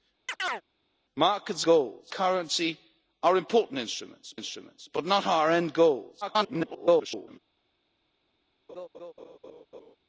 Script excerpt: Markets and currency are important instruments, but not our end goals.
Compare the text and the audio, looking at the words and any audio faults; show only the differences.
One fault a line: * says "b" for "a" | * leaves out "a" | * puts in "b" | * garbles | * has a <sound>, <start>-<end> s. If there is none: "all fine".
* has a chirp, 0.3-0.6 s
* says "goals" for "and"
* puts in "instruments"
* garbles
* has a laugh, 8.7-10.0 s